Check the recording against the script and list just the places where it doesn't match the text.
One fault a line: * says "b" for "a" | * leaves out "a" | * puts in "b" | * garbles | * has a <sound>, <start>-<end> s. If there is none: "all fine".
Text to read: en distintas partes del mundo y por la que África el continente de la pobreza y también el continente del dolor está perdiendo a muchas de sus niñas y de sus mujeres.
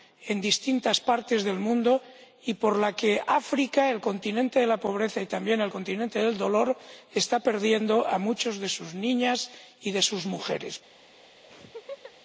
* has a laugh, 11.4-12.1 s